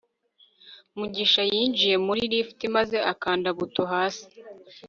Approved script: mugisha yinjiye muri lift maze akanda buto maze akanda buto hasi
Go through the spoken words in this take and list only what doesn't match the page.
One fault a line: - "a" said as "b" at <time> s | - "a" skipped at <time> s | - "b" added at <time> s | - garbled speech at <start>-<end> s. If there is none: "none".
- "maze akanda buto" skipped at 3.8 s